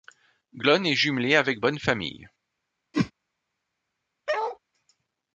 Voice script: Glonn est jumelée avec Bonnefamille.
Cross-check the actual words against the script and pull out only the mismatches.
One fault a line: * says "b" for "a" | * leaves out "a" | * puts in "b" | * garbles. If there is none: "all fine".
all fine